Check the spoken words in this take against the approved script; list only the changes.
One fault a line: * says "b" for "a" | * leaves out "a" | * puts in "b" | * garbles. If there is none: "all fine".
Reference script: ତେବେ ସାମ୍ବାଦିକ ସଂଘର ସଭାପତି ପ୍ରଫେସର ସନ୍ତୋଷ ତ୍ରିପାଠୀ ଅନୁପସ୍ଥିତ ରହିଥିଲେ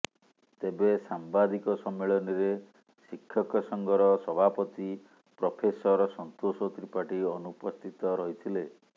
* puts in "ସମ୍ମିଳନୀରେ ଶିକ୍ଷକ"